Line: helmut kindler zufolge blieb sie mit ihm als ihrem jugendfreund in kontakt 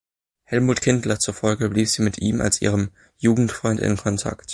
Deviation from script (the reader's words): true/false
false